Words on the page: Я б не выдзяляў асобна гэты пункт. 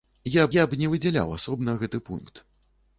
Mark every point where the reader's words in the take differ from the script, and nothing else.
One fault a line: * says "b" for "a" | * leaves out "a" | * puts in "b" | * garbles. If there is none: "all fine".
* puts in "я"